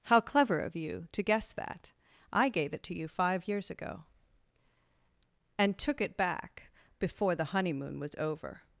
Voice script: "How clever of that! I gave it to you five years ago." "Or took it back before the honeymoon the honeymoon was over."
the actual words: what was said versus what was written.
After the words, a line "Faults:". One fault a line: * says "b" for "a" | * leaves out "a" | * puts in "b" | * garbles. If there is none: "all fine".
"How clever of you to guess that! I gave it to you five years ago." "And took it back before the honeymoon was over."
Faults:
* puts in "you to guess"
* says "And" for "Or"
* leaves out "the honeymoon"